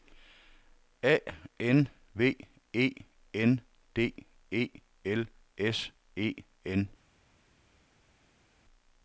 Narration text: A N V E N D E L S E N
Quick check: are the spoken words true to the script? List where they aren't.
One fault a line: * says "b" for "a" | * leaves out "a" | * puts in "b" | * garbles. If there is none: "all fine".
all fine